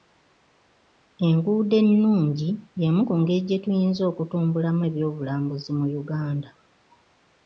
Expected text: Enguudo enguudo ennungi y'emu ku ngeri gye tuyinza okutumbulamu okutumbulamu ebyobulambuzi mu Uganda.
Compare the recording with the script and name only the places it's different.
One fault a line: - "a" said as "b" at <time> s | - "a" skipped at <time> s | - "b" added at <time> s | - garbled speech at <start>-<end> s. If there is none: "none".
- "enguudo" skipped at 1.8 s
- "okutumbulamu" skipped at 4.8 s